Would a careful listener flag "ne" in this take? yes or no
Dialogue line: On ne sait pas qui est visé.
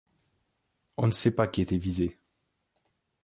no